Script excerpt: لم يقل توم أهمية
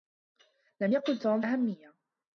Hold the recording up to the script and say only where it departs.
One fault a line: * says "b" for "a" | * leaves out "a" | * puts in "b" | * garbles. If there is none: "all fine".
all fine